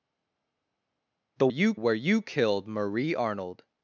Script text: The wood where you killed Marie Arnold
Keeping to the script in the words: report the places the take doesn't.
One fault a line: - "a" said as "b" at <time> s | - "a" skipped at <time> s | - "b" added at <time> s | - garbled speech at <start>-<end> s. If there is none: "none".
- "wood" said as "you" at 1.5 s